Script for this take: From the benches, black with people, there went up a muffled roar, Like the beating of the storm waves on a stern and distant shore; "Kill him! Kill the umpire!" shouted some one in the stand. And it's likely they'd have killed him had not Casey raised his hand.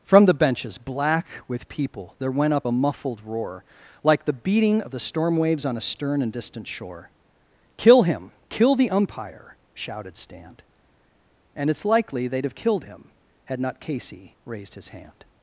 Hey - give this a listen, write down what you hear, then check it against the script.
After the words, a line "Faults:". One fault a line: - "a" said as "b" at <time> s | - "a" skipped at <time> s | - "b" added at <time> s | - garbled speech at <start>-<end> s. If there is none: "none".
From the benches, black with people, there went up a muffled roar, Like the beating of the storm waves on a stern and distant shore; "Kill him! Kill the umpire!" shouted stand. And it's likely they'd have killed him had not Casey raised his hand.
Faults:
- "some one in the" skipped at 10.1 s